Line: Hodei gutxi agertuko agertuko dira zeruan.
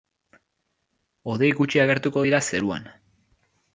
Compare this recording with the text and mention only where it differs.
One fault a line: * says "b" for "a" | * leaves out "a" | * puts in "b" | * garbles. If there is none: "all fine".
* leaves out "agertuko"